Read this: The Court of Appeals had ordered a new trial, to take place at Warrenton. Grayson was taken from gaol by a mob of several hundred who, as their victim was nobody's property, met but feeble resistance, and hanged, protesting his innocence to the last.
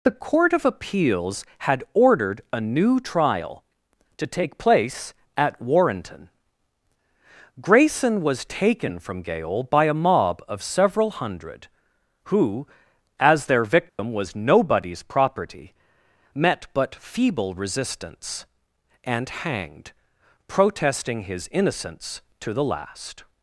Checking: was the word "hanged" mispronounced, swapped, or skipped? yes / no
no